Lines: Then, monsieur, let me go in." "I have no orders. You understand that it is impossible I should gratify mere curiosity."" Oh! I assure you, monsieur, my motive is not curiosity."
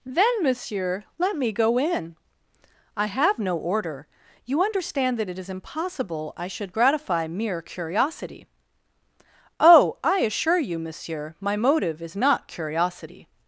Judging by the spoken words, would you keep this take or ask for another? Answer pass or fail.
fail